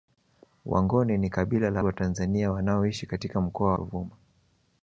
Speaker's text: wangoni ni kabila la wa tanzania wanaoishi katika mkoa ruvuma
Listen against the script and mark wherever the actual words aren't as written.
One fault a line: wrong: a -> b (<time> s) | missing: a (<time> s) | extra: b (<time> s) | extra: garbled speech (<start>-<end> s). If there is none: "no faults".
no faults